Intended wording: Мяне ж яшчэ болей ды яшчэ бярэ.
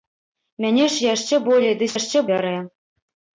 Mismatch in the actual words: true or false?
false